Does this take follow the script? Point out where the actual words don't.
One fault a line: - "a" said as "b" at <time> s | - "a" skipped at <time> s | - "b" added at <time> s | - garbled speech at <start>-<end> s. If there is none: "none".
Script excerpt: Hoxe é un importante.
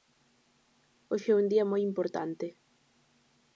- "día moi" added at 1.5 s